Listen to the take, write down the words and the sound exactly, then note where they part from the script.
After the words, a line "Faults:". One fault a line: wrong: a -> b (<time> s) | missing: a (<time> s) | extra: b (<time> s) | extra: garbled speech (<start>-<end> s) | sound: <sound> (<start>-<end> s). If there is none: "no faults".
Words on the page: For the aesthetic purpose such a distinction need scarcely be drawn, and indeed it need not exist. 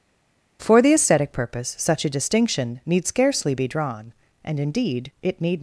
For the aesthetic purpose such a distinction need scarcely be drawn, and indeed it need.
Faults:
missing: not exist (5.6 s)